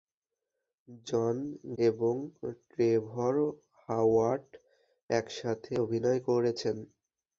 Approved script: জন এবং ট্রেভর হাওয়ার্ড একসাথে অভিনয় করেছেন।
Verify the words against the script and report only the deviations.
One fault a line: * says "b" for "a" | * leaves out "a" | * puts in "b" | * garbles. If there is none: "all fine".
all fine